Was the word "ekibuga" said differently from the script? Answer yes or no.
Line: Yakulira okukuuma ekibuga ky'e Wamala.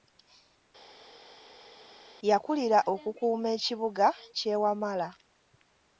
no